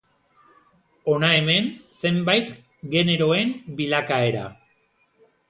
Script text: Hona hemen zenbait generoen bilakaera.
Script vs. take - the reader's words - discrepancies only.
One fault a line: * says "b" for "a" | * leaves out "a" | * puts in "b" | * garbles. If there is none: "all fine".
all fine